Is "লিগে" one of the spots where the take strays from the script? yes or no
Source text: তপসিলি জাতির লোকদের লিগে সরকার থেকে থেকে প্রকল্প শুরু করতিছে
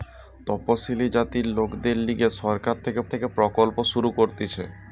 no